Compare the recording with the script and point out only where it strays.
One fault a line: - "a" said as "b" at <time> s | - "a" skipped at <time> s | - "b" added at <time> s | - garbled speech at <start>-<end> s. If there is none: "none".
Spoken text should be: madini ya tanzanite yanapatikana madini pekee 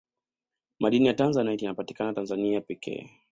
- "madini" said as "tanzania" at 2.1 s